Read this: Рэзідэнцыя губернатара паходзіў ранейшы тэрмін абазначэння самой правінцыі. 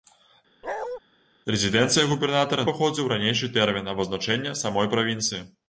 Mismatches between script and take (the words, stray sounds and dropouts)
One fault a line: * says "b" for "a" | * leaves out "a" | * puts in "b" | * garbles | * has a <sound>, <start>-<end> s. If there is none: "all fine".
* has a bark, 0.6-1.0 s